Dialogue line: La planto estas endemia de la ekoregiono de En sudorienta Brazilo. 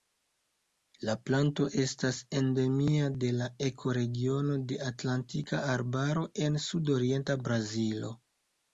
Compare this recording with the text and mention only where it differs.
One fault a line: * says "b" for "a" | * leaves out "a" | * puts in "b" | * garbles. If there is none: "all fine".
* puts in "Atlantika Arbaro"